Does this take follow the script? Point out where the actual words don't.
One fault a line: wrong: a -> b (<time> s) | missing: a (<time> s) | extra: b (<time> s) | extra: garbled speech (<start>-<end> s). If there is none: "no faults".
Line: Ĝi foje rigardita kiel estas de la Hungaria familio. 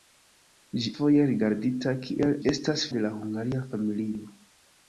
no faults